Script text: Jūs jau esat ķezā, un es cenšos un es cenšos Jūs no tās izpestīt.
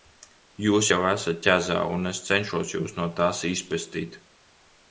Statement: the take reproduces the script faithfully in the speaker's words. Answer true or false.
false